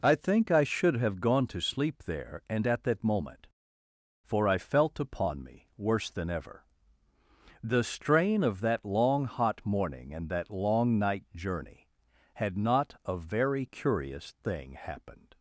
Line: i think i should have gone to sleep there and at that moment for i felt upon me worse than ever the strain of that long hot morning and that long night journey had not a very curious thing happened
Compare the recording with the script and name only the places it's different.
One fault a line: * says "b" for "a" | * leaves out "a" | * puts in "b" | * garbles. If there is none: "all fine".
all fine